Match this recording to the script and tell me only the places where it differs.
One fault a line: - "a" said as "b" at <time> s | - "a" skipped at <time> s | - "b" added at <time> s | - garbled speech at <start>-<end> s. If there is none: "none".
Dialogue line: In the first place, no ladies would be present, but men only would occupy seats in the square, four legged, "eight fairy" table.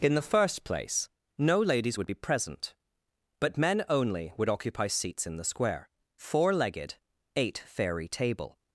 none